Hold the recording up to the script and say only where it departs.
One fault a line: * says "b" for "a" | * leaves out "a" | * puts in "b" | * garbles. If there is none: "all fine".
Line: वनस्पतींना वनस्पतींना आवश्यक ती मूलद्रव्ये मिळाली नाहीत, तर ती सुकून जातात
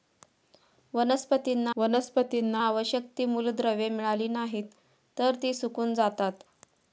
all fine